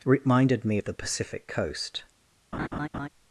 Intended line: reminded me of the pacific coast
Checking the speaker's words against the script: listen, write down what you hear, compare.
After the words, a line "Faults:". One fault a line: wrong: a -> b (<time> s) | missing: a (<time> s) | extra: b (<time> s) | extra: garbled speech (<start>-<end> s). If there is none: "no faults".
reminded me of the pacific coast
Faults:
no faults